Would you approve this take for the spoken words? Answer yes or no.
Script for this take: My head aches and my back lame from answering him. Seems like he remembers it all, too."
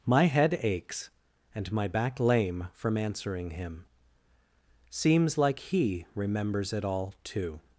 yes